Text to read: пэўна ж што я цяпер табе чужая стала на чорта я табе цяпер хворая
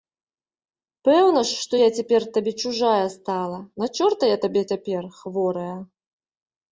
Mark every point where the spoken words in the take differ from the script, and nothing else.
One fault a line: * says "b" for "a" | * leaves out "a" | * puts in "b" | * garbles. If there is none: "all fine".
all fine